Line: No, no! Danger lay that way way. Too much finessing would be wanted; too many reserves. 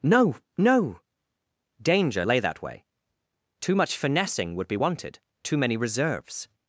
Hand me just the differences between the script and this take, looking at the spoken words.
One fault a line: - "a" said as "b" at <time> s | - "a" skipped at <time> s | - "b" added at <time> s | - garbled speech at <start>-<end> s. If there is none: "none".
- "way" skipped at 2.9 s